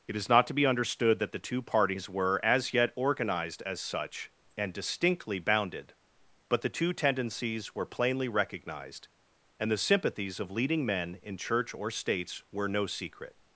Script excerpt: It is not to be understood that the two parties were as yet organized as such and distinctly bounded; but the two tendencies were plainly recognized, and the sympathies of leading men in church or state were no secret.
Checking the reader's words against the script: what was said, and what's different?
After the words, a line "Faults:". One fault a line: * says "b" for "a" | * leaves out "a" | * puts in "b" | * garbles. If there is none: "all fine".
It is not to be understood that the two parties were as yet organized as such and distinctly bounded; but the two tendencies were plainly recognized, and the sympathies of leading men in church or states were no secret.
Faults:
* says "states" for "state"